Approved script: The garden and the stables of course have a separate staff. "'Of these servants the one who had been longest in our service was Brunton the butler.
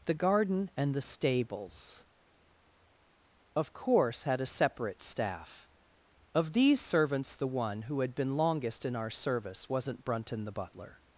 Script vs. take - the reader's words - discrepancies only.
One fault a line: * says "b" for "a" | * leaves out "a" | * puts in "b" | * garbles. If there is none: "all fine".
* says "had" for "have"
* says "wasn't" for "was"